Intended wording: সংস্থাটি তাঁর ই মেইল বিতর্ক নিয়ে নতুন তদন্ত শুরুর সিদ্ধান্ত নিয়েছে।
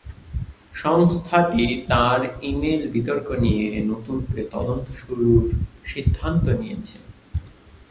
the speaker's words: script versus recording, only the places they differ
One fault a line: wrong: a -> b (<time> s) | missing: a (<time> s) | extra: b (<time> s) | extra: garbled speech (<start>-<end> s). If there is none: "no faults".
extra: করে (4.2 s)